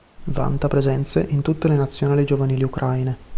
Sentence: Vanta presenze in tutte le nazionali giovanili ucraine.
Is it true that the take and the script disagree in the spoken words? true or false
false